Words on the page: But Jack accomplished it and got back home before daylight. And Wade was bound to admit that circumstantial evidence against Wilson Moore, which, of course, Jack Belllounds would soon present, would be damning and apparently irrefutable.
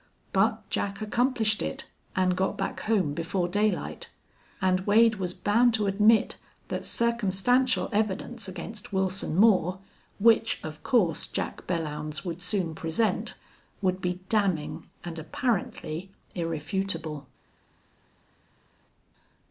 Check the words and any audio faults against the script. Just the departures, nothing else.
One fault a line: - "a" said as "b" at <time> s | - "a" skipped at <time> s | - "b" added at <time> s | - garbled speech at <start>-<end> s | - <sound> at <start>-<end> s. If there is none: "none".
none